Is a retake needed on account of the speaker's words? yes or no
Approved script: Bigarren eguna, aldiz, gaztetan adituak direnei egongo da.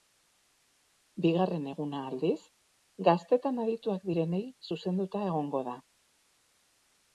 yes